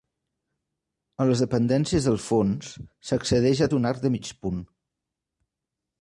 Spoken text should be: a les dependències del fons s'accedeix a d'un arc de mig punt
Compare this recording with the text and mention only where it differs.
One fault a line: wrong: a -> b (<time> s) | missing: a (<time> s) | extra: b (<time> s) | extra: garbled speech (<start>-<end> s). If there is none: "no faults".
no faults